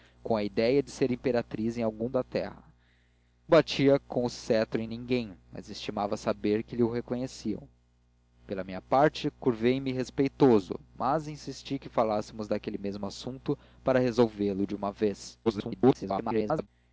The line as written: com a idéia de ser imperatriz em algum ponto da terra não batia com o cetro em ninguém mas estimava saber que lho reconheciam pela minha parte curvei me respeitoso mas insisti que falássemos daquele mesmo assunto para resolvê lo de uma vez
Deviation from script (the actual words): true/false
true